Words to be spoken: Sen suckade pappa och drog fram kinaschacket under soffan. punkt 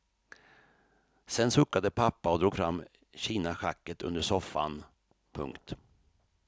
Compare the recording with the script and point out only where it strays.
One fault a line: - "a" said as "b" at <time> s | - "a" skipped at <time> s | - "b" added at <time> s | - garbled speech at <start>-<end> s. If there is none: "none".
none